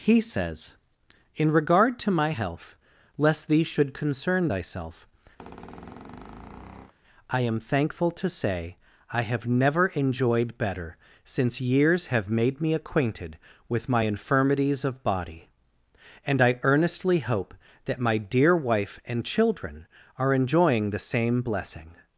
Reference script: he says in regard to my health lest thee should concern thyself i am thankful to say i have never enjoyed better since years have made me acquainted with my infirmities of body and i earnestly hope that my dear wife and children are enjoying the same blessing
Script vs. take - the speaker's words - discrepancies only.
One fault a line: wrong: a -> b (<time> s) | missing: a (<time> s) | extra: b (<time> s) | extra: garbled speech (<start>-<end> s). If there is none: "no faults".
no faults